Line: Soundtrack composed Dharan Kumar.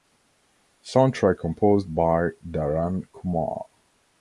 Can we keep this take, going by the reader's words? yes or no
no